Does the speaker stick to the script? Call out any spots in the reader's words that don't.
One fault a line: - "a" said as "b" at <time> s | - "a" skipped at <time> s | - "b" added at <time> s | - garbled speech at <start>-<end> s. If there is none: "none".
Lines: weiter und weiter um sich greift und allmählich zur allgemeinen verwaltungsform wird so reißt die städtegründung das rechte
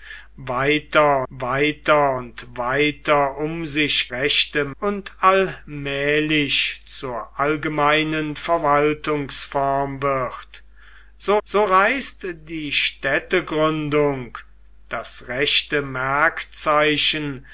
- "weiter" added at 1.3 s
- "greift" said as "rechte" at 4.1 s
- "so" added at 11.4 s